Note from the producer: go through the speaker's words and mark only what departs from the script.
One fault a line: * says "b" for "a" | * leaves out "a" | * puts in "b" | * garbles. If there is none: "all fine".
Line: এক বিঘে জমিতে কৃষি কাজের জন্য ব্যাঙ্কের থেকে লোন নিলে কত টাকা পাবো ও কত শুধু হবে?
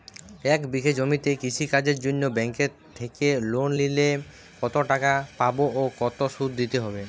* puts in "দিতে"